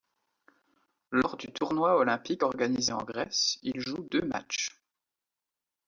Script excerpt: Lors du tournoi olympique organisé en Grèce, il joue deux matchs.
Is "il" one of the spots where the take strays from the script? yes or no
no